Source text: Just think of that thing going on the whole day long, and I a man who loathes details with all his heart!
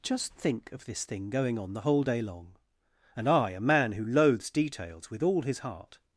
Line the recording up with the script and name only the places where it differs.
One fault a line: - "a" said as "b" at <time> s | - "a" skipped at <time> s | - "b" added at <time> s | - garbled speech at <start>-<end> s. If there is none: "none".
- "that" said as "this" at 0.8 s